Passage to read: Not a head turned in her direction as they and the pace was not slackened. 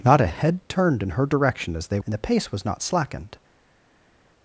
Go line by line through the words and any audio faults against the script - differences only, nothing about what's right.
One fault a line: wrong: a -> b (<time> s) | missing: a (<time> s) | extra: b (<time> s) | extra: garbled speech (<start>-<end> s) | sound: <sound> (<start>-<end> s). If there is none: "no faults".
no faults